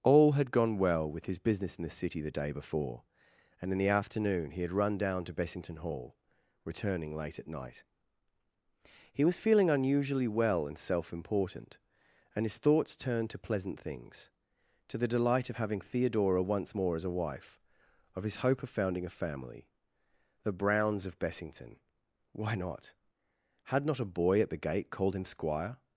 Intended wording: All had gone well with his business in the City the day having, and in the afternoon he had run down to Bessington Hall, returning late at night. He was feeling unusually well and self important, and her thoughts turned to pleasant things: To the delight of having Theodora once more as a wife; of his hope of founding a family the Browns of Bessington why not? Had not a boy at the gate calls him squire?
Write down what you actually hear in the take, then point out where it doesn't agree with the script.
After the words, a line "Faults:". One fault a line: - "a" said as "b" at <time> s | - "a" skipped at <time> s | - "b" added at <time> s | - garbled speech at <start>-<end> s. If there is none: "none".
All had gone well with his business in the City the day before, and in the afternoon he had run down to Bessington Hall, returning late at night. He was feeling unusually well and self important, and his thoughts turned to pleasant things: To the delight of having Theodora once more as a wife; of his hope of founding a family the Browns of Bessington why not? Had not a boy at the gate called him squire?
Faults:
- "having" said as "before" at 2.5 s
- "her" said as "his" at 12.4 s
- "calls" said as "called" at 24.9 s